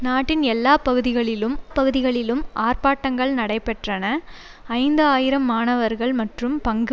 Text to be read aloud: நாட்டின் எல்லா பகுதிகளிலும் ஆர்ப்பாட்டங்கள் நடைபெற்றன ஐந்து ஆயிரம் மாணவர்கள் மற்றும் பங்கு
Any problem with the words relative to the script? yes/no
yes